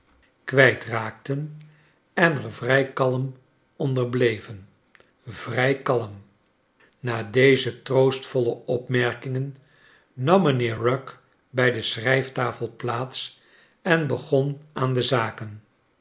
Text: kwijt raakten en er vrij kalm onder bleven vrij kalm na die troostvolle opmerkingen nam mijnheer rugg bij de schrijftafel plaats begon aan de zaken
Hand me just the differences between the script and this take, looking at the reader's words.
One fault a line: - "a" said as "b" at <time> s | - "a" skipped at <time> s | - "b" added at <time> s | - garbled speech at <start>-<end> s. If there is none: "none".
- "die" said as "deze" at 7.2 s
- "en" added at 13.8 s